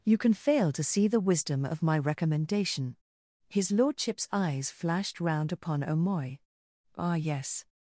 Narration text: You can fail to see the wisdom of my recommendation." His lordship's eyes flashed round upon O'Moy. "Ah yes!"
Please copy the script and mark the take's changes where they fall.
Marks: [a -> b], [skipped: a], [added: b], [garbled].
You can fail to see the wisdom of my recommendation." His lordship's eyes flashed round upon O'Moy. "Ah yes!"